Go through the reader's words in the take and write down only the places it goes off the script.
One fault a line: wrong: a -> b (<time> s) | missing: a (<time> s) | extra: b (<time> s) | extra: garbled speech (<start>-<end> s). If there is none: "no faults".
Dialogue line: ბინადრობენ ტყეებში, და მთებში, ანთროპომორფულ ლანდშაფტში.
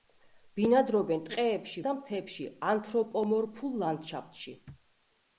no faults